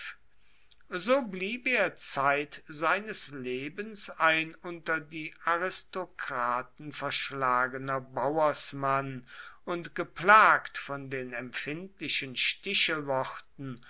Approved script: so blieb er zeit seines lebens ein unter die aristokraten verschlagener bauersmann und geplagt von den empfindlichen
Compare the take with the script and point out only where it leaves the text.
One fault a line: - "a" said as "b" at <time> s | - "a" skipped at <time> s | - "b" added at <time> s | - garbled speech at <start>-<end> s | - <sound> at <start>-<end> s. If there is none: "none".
none